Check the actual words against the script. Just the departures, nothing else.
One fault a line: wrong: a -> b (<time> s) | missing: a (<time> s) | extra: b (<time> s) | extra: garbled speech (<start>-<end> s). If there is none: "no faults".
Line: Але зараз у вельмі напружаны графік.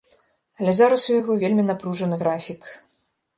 extra: яго (1.2 s)